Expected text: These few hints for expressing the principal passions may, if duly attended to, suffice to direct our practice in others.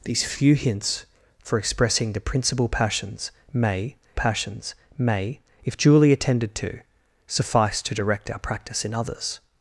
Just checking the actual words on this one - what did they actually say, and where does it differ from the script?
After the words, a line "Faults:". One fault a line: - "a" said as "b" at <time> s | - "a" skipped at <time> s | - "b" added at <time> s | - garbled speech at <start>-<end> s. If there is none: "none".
These few hints for expressing the principal passions may passions may, if duly attended to, suffice to direct our practice in others.
Faults:
- "passions may" added at 4.1 s